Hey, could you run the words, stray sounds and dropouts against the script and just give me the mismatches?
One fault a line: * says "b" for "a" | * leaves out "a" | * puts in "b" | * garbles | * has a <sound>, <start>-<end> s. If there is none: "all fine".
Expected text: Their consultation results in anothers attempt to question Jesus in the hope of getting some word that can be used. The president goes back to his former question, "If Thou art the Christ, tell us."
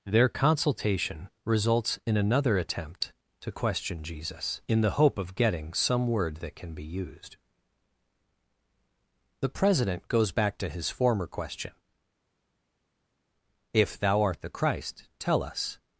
* says "another" for "anothers"